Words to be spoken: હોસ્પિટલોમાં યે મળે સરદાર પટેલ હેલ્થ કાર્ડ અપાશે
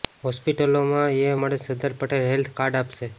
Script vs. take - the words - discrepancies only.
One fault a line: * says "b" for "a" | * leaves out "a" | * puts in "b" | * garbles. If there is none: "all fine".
all fine